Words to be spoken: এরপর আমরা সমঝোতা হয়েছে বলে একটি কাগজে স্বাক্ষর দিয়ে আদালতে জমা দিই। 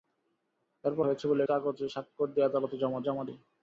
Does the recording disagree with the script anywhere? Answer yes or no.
yes